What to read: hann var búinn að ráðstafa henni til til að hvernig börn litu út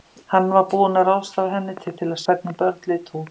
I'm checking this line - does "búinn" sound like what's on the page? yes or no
yes